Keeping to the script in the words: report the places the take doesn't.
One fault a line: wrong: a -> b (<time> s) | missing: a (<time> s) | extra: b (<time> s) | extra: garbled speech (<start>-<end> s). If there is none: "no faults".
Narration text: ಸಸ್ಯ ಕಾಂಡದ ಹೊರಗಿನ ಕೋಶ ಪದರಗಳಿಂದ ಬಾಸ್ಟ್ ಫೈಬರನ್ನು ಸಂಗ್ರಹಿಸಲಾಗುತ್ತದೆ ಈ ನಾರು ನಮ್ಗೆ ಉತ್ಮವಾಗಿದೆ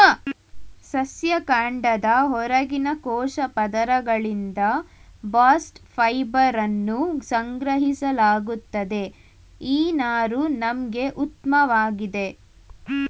no faults